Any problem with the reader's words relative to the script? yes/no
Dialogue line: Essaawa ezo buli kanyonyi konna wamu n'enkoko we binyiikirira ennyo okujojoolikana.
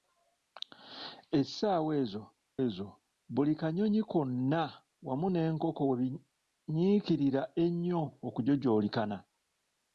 yes